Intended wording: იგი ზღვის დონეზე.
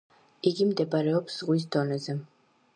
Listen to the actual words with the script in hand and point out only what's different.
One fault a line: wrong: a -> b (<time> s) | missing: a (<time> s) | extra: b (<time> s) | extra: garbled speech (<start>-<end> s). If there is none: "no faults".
extra: მდებარეობს (0.7 s)